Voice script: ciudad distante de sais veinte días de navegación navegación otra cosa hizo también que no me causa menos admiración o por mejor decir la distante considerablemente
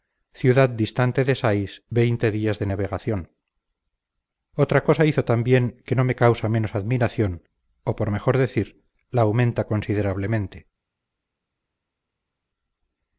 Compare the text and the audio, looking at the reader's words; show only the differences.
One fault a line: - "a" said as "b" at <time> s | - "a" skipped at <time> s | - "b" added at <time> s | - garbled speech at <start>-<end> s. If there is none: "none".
- "navegación" skipped at 3.2 s
- "distante" said as "aumenta" at 9.2 s